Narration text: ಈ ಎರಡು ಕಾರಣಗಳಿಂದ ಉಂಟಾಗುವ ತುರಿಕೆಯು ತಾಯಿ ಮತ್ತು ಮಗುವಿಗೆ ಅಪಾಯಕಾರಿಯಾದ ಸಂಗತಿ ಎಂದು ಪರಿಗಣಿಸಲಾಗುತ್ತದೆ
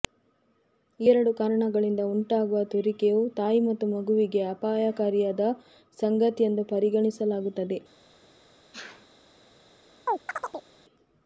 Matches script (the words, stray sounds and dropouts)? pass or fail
fail